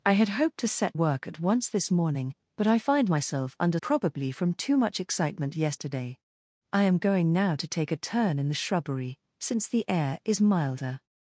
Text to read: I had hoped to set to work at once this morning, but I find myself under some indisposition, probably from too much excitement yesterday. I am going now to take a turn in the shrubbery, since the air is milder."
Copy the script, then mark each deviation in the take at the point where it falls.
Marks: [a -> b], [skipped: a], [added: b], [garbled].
I had hoped to set [skipped: to] work at once this morning, but I find myself under [skipped: some indisposition,] probably from too much excitement yesterday. I am going now to take a turn in the shrubbery, since the air is milder."